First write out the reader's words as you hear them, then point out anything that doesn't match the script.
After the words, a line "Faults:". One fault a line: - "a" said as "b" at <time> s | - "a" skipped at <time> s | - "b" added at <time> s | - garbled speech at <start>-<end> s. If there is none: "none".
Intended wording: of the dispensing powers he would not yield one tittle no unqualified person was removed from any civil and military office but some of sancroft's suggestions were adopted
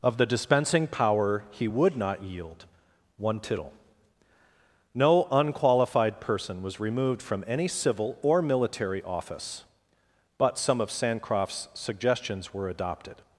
of the dispensing power he would not yield one tittle no unqualified person was removed from any civil or military office but some of sancroft's suggestions were adopted
Faults:
- "powers" said as "power" at 0.9 s
- "and" said as "or" at 8.2 s